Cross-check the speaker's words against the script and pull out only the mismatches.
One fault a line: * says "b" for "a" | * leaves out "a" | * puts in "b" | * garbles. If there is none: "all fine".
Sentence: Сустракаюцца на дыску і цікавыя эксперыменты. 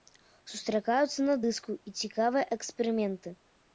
all fine